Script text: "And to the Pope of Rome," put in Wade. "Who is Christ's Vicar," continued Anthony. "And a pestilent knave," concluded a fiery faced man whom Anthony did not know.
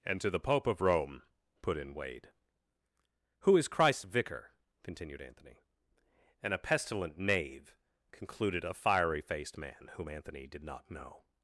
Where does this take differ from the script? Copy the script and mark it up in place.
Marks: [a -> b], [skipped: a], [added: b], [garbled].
"And to the Pope of Rome," put in Wade. "Who is Christ's Vicar," continued Anthony. "And a pestilent knave," concluded a fiery faced man whom Anthony did not know.